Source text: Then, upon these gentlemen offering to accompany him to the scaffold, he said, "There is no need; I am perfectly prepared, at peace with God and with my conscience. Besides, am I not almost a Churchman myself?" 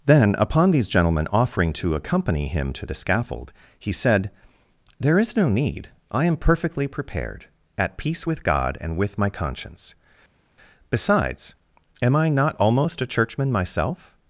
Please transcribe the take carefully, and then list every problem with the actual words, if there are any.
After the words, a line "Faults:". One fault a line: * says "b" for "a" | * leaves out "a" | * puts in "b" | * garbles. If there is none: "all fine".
Then, upon these gentlemen offering to accompany him to the scaffold, he said, "There is no need; I am perfectly prepared, at peace with God and with my conscience. Besides, am I not almost a Churchman myself?"
Faults:
all fine